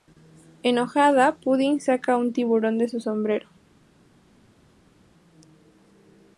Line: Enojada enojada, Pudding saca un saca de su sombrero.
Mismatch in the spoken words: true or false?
true